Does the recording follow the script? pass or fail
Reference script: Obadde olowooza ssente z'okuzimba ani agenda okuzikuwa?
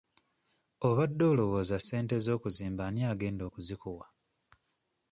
pass